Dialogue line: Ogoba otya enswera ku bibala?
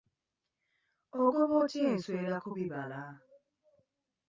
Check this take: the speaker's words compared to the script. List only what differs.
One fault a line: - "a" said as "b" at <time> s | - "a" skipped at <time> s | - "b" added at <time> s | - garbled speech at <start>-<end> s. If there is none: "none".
none